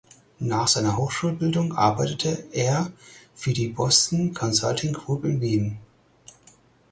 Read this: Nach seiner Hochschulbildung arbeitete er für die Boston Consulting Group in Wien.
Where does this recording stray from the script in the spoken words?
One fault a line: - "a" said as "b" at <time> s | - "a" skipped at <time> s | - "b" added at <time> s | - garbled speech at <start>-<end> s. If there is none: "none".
none